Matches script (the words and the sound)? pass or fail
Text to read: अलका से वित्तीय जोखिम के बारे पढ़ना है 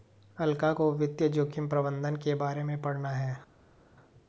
fail